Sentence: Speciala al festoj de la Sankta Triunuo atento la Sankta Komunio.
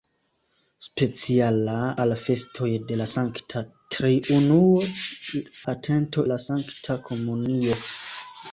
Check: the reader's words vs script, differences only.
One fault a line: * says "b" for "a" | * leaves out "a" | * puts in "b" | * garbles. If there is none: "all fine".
all fine